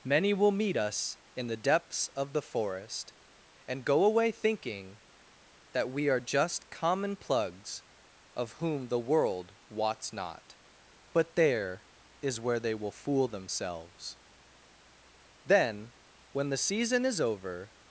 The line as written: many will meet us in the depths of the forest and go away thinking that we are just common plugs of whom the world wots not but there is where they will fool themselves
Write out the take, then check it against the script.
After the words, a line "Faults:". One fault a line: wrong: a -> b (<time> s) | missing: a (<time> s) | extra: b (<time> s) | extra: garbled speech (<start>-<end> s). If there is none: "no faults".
many will meet us in the depths of the forest and go away thinking that we are just common plugs of whom the world wots not but there is where they will fool themselves then when the season is over
Faults:
extra: then when the season is over (15.4 s)